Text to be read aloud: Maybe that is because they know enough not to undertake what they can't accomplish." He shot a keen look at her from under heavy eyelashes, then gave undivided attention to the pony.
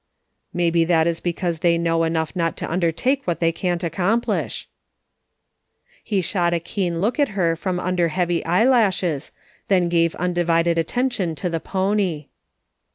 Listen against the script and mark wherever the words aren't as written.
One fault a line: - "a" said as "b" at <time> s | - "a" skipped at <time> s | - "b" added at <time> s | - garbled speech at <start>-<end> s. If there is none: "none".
none